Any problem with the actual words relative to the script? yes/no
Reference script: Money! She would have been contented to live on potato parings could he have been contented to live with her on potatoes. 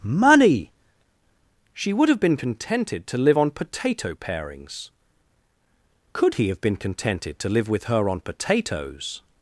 no